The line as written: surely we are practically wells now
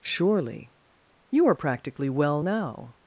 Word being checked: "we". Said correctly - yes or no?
no